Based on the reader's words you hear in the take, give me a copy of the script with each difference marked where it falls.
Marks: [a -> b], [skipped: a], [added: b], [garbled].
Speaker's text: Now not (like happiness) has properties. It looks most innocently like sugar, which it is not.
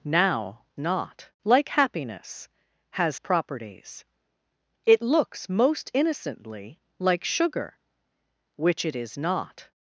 Now not (like happiness) has properties. It looks most innocently like sugar, which it is not.